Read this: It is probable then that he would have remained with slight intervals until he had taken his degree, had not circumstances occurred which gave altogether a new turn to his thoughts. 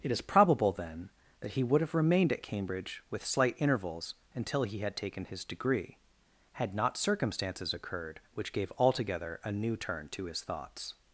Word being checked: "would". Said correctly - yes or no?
yes